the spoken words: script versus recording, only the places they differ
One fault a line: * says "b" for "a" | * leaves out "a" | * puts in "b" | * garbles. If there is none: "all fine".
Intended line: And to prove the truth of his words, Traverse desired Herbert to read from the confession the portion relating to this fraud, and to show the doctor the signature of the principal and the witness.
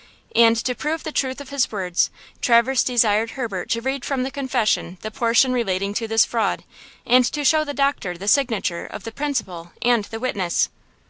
all fine